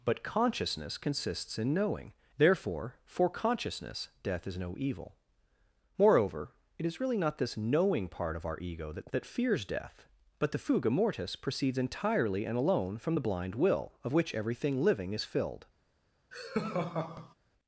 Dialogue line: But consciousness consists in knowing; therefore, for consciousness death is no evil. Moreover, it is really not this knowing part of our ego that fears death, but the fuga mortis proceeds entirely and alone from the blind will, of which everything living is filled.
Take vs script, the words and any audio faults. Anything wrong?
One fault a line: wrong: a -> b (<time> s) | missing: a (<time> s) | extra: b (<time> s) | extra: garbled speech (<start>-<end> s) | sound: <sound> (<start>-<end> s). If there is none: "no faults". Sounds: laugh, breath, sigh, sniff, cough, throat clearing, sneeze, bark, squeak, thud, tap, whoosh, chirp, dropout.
extra: that (9.1 s)
sound: laugh (16.3-17.3 s)